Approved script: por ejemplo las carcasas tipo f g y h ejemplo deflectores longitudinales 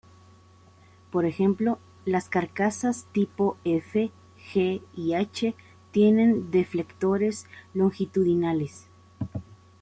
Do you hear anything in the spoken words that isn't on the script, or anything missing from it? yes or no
yes